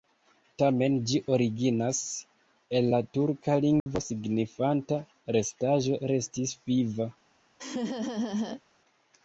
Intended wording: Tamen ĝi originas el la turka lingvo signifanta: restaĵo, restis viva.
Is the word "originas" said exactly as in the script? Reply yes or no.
yes